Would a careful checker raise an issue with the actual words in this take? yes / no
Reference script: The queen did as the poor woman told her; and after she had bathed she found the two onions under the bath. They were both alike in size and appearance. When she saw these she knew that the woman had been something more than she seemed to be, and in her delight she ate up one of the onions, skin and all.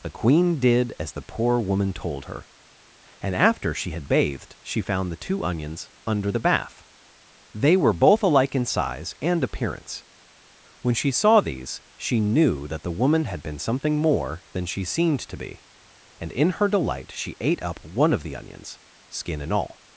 no